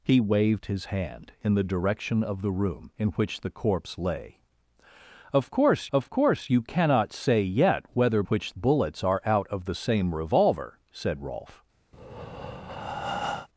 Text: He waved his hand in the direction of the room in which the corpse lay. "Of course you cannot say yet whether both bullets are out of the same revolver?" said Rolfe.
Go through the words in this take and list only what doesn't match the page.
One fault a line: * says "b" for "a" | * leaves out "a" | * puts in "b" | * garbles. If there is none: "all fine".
* puts in "of course"
* says "which" for "both"